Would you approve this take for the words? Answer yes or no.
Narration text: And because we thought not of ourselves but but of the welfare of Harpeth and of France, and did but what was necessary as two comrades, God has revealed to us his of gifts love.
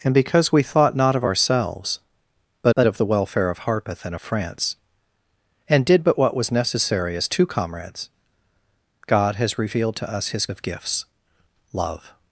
yes